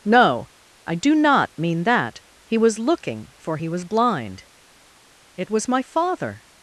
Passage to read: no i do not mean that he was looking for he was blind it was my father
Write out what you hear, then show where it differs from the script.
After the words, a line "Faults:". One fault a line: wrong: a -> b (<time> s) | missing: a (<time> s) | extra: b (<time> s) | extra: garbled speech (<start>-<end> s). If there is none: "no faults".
no i do not mean that he was looking for he was blind it was my father
Faults:
no faults